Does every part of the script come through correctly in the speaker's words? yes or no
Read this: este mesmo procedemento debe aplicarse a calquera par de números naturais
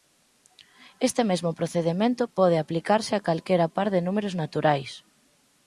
no